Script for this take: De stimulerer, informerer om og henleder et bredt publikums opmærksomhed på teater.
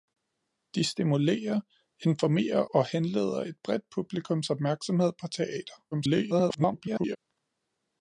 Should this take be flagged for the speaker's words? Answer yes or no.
yes